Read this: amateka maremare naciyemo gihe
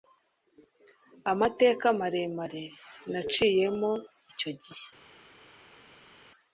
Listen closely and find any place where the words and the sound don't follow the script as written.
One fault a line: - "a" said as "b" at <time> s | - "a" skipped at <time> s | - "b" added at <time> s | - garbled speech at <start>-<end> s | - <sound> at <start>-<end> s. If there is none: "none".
- "icyo" added at 4.3 s